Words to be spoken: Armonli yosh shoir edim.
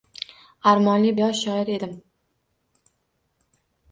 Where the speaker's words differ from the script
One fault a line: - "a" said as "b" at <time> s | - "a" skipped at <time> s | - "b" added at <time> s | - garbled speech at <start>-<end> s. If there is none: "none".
none